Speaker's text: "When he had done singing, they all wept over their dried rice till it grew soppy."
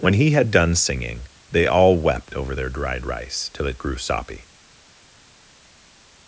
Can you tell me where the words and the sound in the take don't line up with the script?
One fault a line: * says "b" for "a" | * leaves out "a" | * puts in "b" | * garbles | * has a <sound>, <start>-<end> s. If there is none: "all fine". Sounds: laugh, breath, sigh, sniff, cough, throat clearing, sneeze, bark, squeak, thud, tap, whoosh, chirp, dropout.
all fine